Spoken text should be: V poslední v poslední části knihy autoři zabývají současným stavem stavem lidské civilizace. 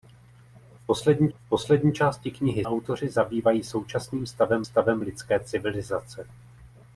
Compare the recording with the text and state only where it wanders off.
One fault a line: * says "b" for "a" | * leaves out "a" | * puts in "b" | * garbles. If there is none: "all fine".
all fine